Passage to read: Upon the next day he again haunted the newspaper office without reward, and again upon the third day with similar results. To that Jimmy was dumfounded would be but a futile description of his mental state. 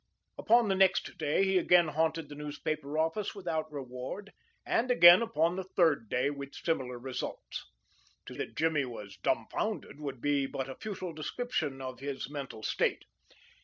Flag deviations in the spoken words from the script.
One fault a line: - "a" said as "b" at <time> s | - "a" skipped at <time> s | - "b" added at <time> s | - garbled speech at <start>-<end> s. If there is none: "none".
none